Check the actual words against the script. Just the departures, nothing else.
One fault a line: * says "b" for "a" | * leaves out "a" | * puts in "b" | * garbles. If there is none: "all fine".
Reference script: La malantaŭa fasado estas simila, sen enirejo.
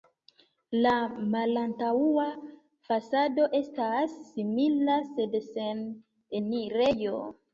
* puts in "sed"